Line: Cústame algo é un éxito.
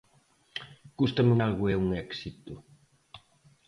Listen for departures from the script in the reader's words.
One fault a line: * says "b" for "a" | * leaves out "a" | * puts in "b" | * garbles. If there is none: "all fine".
all fine